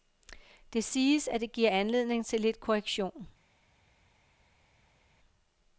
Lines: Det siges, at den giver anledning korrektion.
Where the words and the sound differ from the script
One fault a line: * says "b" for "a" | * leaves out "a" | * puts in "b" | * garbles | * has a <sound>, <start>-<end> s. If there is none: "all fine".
* says "det" for "den"
* puts in "til lidt"